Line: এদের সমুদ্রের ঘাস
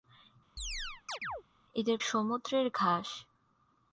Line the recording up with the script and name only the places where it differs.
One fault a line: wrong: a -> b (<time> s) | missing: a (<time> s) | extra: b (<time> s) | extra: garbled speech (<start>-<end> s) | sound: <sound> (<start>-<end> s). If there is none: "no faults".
sound: chirp (0.6-1.4 s)